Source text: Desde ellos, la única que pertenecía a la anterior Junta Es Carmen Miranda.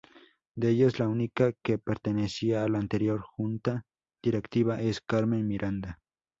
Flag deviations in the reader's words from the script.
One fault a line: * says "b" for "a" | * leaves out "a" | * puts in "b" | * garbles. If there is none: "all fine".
* says "De" for "Desde"
* puts in "Directiva"